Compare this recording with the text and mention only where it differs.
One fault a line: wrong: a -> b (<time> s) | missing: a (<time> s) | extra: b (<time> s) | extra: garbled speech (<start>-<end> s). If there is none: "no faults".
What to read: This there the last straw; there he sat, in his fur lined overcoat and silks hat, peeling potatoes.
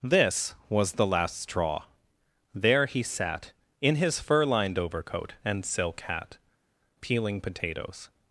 wrong: there -> was (0.7 s)
wrong: silks -> silk (5.6 s)